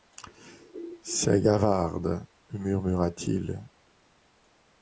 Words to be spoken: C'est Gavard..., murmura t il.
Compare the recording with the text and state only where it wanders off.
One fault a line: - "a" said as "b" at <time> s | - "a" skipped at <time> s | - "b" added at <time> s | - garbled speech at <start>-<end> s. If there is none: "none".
none